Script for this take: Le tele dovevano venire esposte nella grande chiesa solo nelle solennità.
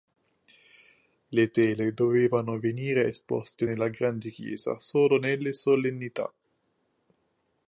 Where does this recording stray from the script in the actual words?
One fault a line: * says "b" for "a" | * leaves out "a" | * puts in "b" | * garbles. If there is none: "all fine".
all fine